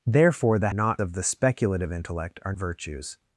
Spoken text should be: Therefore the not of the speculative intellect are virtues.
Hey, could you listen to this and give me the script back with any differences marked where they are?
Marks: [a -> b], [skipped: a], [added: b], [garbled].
Therefore the not of the speculative intellect are virtues.